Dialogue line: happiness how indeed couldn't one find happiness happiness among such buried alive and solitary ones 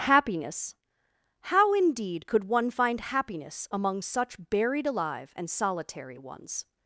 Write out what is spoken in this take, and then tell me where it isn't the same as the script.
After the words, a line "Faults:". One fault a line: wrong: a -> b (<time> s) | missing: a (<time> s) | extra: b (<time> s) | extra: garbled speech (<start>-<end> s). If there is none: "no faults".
happiness how indeed could one find happiness among such buried alive and solitary ones
Faults:
wrong: couldn't -> could (2.2 s)
missing: happiness (3.7 s)